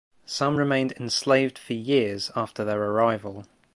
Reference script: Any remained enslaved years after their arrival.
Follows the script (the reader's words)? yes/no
no